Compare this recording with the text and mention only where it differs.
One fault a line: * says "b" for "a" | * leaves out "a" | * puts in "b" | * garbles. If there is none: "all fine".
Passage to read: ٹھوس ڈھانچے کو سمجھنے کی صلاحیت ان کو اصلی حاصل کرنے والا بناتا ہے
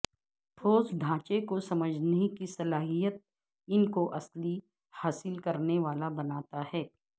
all fine